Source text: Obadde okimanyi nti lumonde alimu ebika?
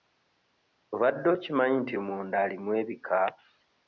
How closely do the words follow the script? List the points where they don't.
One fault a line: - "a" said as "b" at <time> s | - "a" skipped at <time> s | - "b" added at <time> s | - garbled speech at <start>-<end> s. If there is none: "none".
none